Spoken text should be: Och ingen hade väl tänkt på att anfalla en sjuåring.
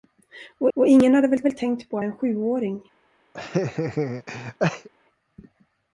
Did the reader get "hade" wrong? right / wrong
right